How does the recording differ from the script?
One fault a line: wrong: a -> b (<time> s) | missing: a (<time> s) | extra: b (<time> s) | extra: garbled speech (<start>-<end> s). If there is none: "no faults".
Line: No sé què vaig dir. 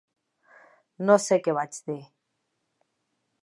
no faults